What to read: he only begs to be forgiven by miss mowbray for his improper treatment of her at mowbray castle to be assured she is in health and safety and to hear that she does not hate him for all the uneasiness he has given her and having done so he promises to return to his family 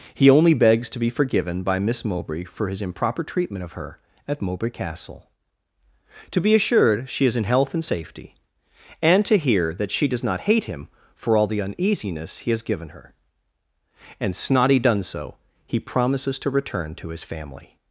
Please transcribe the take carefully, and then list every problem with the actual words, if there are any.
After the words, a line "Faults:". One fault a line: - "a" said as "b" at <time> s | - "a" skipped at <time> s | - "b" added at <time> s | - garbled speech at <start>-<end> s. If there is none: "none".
he only begs to be forgiven by miss mowbray for his improper treatment of her at mowbray castle to be assured she is in health and safety and to hear that she does not hate him for all the uneasiness he has given her and snotty done so he promises to return to his family
Faults:
- "having" said as "snotty" at 14.3 s